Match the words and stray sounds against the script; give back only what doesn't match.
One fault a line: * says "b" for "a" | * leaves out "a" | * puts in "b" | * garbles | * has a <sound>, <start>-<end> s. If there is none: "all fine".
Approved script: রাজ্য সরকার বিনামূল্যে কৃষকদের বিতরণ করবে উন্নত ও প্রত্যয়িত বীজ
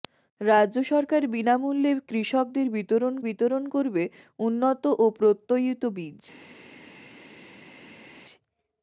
* puts in "বিতরণ"